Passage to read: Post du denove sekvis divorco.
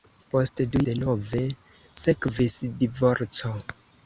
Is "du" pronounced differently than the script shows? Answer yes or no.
no